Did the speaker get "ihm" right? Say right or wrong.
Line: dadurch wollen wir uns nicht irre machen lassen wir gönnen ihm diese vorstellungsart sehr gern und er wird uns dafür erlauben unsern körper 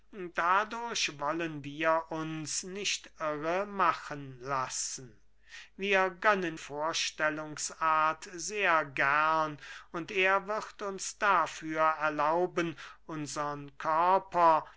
wrong